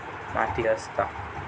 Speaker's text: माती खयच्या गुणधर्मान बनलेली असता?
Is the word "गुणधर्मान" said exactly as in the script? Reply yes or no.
no